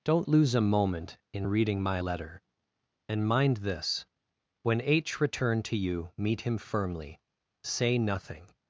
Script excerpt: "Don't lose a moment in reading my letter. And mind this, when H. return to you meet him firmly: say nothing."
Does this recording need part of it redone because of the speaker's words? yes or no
no